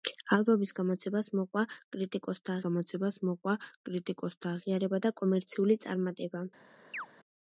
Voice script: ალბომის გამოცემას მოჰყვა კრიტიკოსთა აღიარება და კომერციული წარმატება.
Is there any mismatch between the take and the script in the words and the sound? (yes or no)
yes